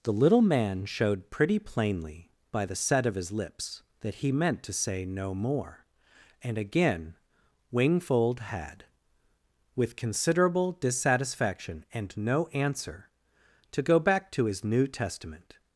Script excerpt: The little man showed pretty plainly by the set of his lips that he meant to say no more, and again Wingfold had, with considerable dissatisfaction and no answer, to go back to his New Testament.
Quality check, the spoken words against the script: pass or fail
pass